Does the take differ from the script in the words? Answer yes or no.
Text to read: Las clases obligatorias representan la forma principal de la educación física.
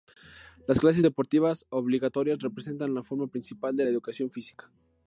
yes